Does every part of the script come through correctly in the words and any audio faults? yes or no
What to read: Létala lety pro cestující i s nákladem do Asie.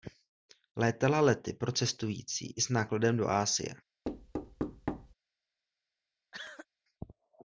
no